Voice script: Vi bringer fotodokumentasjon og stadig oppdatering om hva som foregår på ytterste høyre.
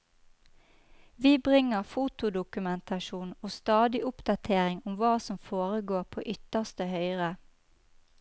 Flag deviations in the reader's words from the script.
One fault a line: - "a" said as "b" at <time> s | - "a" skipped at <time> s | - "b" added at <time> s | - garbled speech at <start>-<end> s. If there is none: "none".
none